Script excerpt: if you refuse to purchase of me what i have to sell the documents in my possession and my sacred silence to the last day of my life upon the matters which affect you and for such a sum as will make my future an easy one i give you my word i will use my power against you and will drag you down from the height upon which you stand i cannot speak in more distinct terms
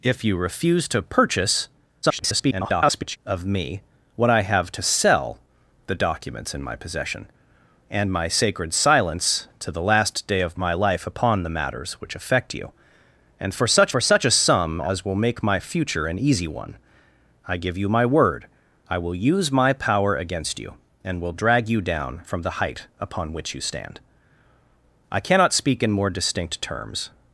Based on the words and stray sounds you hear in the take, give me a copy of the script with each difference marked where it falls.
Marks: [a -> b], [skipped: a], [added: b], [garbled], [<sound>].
if you refuse to purchase [garbled] of me what i have to sell the documents in my possession and my sacred silence to the last day of my life upon the matters which affect you and for such [added: for such] a sum as will make my future an easy one i give you my word i will use my power against you and will drag you down from the height upon which you stand i cannot speak in more distinct terms